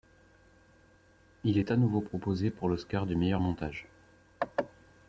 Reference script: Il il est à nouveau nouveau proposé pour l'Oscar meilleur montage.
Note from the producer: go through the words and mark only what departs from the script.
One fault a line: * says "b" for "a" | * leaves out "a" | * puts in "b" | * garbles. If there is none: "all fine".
* leaves out "il"
* leaves out "nouveau"
* puts in "du"